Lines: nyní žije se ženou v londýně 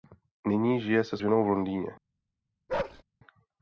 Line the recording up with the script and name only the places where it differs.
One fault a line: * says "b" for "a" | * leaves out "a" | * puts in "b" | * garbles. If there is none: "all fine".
all fine